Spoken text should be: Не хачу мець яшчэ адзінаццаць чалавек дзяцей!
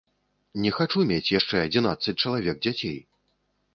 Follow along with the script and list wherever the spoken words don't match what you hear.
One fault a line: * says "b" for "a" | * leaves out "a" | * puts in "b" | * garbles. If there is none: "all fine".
all fine